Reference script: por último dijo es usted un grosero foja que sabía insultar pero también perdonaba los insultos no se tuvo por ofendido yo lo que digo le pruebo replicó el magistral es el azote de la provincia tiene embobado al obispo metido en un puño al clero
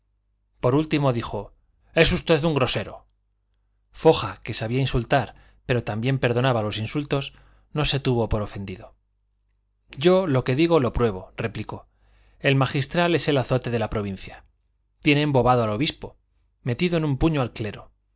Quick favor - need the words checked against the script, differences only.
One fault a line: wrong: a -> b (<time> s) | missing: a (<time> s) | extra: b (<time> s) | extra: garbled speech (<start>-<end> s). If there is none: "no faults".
wrong: le -> lo (10.8 s)